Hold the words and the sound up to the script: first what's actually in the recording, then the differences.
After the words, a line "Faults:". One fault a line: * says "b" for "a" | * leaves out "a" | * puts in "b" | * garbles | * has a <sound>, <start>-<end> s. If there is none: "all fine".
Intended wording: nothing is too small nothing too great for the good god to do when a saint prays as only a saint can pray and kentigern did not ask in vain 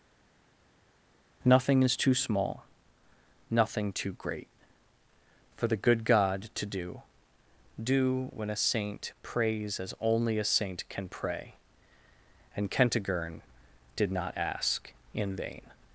nothing is too small nothing too great for the good god to do do when a saint prays as only a saint can pray and kentigern did not ask in vain
Faults:
* puts in "do"